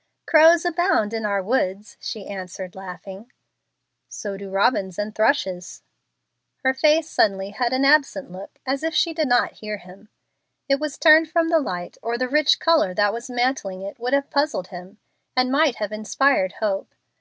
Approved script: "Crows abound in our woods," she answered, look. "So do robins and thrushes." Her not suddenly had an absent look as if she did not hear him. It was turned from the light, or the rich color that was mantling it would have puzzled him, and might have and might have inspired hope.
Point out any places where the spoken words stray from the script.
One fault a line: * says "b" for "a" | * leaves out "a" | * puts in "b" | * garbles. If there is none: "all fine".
* says "laughing" for "look"
* says "face" for "not"
* leaves out "and might have"